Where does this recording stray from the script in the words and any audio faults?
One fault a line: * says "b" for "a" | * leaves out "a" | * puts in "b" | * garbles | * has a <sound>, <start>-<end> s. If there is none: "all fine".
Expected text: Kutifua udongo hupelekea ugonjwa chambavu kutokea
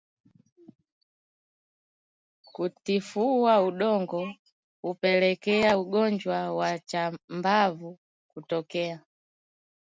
* puts in "wa"